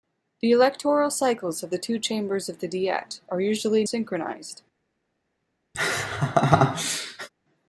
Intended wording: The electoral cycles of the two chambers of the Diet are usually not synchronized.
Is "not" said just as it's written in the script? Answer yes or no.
no